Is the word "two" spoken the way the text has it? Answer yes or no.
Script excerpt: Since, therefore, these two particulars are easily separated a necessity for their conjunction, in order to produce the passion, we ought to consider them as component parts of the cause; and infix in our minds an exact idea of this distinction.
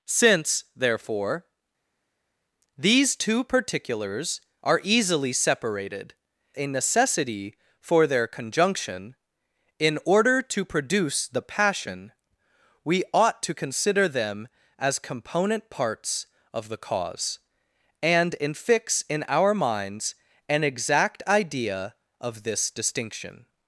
yes